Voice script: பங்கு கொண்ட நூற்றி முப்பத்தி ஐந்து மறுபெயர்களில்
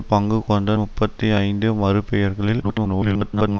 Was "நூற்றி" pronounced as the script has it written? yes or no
no